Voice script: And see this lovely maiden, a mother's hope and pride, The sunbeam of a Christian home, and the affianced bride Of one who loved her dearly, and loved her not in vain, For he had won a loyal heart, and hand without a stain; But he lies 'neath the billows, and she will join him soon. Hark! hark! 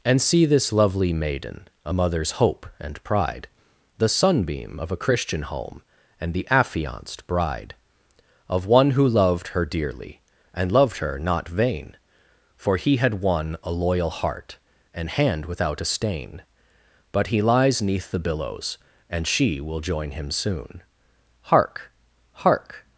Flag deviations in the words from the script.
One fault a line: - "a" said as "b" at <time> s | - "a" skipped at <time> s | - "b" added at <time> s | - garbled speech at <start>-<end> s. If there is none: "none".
- "in" skipped at 11.5 s